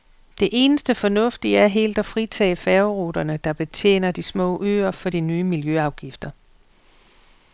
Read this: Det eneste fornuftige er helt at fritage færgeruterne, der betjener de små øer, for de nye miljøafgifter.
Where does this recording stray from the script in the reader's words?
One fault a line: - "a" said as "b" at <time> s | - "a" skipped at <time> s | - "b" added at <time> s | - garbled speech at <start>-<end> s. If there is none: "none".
none